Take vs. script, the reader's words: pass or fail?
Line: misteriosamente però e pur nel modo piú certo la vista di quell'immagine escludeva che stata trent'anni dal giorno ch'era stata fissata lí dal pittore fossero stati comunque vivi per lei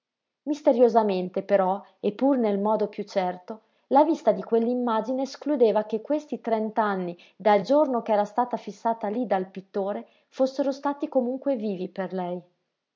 fail